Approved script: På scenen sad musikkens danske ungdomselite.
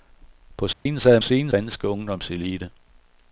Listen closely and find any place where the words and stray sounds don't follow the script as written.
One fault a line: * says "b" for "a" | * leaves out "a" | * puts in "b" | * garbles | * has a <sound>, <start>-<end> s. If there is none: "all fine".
* has a dropout, 0.7-0.9 s
* says "scenen" for "musikkens"